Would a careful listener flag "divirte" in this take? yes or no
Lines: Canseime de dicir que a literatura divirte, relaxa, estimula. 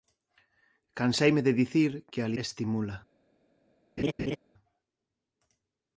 yes